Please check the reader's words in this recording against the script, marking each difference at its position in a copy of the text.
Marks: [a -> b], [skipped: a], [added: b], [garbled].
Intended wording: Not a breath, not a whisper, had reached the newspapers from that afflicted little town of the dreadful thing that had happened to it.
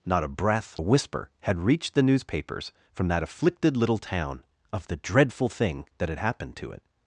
Not a breath, [skipped: not] a whisper, had reached the newspapers from that afflicted little town of the dreadful thing that had happened to it.